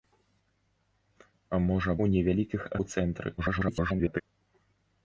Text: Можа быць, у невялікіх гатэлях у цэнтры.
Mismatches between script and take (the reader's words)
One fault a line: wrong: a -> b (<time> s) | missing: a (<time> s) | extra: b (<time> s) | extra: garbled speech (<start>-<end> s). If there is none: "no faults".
missing: быць (1.9 s)
missing: гатэлях (2.6 s)
extra: garbled speech (3.4-4.2 s)